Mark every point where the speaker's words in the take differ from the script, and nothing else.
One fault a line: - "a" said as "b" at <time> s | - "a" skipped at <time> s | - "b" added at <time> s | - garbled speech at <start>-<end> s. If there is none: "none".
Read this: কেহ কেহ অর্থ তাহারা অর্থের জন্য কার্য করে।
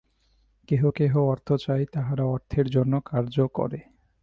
- "চায়" added at 1.5 s